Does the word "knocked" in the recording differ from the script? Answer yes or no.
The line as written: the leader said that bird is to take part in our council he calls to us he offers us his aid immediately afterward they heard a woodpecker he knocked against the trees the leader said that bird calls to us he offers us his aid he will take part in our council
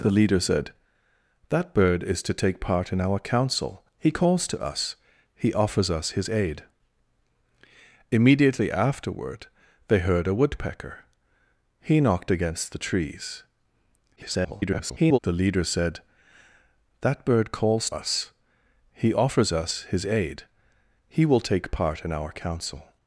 no